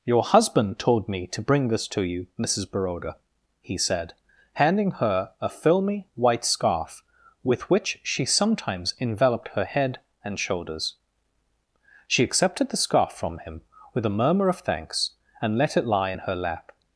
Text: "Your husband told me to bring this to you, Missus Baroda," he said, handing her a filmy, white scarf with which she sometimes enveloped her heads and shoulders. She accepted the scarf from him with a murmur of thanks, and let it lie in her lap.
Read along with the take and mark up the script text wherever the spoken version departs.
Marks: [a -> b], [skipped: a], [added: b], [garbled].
"Your husband told me to bring this to you, Missus Baroda," he said, handing her a filmy, white scarf with which she sometimes enveloped her [heads -> head] and shoulders. She accepted the scarf from him with a murmur of thanks, and let it lie in her lap.